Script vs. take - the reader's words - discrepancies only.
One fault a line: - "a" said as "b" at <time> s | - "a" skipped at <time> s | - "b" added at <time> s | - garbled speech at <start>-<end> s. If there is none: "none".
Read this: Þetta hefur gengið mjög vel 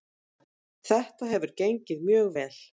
none